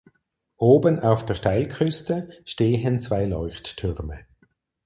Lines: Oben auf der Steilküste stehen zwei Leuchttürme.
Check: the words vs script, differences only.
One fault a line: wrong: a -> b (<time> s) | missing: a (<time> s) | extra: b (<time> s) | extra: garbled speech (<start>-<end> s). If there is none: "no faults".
no faults